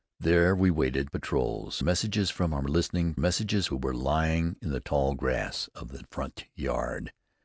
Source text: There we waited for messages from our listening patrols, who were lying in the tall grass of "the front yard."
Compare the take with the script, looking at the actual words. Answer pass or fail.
fail